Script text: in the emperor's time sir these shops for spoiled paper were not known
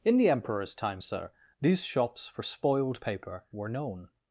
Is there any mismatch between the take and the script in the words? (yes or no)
yes